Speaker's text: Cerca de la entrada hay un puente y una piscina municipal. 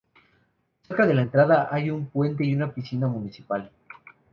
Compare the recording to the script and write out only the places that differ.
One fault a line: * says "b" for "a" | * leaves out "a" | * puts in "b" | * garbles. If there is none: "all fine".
all fine